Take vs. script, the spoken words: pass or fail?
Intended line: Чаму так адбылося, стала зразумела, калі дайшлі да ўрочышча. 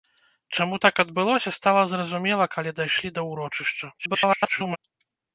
fail